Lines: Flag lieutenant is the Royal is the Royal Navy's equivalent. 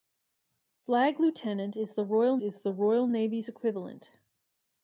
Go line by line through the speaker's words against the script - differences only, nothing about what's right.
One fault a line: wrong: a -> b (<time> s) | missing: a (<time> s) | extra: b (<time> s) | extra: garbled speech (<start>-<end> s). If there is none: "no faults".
no faults